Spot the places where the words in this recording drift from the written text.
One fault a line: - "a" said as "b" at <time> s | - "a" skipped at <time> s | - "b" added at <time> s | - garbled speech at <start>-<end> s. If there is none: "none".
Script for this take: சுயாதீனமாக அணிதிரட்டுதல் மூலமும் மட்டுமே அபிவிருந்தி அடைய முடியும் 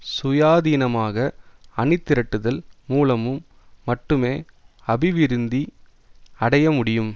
none